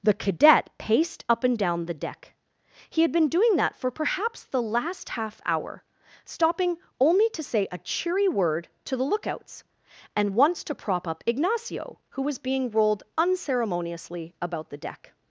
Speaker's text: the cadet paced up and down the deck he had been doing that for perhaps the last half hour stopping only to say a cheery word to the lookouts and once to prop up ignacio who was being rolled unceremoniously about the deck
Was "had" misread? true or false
false